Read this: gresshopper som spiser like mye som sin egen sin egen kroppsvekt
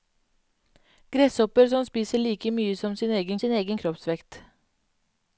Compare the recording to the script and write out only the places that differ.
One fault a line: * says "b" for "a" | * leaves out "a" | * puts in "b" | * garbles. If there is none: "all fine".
all fine